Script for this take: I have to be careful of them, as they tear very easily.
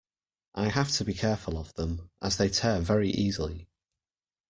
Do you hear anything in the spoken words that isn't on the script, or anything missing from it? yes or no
no